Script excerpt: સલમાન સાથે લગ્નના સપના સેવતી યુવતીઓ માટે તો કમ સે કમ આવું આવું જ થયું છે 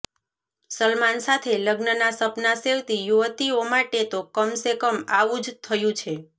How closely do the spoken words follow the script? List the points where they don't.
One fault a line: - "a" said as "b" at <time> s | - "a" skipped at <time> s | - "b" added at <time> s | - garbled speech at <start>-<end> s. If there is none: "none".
- "આવું" skipped at 5.4 s